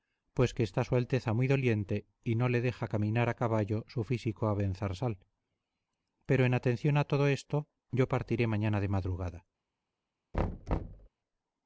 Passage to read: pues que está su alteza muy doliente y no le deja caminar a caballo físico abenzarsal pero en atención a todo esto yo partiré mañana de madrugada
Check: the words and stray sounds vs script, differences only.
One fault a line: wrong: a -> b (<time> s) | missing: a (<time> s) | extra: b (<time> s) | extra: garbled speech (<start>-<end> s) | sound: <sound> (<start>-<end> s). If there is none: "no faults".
extra: su (3.9 s)
sound: thud (10.3-11.1 s)